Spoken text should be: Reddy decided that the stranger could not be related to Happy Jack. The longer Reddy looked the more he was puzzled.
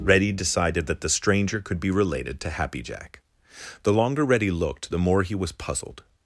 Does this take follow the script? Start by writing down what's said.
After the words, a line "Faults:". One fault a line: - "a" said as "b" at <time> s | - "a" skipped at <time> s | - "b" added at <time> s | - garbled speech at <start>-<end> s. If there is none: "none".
Reddy decided that the stranger could be related to Happy Jack. The longer Reddy looked the more he was puzzled.
Faults:
- "not" skipped at 1.8 s